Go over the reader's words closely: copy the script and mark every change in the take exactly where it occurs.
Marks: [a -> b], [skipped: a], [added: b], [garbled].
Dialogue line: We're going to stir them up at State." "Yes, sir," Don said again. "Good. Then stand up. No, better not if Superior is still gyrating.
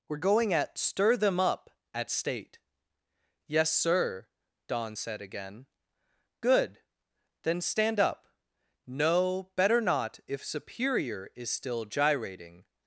We're going [to -> at] stir them up at State." "Yes, sir," Don said again. "Good. Then stand up. No, better not if Superior is still gyrating.